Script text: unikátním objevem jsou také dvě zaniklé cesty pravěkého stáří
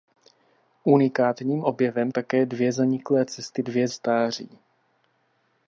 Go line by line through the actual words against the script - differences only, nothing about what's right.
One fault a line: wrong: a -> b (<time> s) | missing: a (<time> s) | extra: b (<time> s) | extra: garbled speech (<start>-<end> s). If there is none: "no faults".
missing: jsou (2.1 s)
wrong: pravěkého -> dvě (3.6 s)